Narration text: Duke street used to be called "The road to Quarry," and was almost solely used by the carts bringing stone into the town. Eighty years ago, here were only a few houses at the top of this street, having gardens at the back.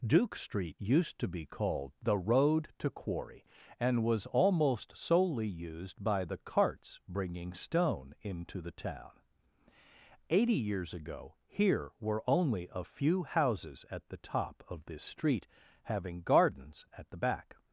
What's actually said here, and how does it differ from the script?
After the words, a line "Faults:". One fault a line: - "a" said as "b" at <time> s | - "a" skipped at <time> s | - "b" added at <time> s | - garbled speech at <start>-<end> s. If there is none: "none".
Duke street used to be called "The road to Quarry," and was almost solely used by the carts bringing stone into the town. Eighty years ago, here were only a few houses at the top of this street, having gardens at the back.
Faults:
none